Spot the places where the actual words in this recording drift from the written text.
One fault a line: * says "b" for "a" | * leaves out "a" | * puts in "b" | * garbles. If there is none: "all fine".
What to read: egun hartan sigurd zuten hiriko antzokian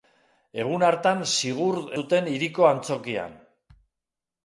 all fine